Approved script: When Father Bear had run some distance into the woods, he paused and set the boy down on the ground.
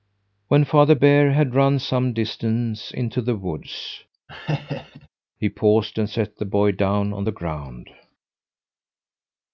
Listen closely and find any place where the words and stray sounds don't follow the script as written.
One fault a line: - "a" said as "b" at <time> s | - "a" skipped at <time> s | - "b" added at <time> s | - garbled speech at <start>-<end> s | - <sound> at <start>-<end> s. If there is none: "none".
- laugh at 4.3-5.1 s